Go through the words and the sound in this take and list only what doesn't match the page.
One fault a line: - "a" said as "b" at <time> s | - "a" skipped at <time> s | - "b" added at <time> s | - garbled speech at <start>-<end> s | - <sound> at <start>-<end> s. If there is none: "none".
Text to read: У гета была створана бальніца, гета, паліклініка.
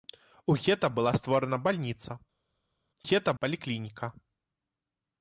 none